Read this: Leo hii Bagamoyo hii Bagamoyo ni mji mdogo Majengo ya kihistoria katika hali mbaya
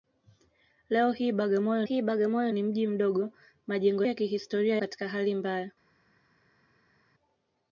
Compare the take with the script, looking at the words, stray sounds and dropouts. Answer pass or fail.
pass